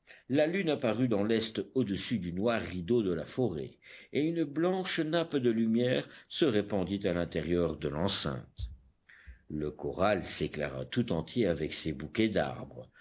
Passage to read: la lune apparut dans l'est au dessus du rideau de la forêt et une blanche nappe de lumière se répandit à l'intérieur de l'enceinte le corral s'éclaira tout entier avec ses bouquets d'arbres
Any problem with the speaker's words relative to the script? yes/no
yes